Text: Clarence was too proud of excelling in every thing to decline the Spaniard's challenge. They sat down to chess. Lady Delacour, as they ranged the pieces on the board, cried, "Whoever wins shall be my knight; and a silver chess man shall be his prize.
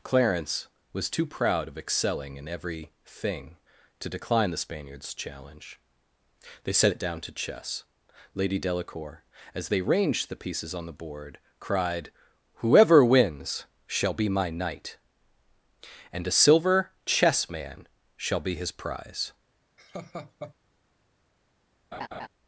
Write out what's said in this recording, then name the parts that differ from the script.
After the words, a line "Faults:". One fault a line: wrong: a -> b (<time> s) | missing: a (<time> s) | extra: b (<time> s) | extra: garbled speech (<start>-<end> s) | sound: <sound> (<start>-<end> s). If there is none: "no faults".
Clarence was too proud of excelling in every thing to decline the Spaniard's challenge. They set it down to chess. Lady Delacour, as they ranged the pieces on the board, cried, "Whoever wins shall be my knight; and a silver chess man shall be his prize.
Faults:
wrong: sat -> set it (6.7 s)
sound: laugh (19.8-20.5 s)
sound: laugh (21.9-22.3 s)